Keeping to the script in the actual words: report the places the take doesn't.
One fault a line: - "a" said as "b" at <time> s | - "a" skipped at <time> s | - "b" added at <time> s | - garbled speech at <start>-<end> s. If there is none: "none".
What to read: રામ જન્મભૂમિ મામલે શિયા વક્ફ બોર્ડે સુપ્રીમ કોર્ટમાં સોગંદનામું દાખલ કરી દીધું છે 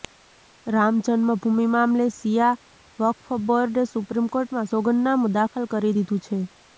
none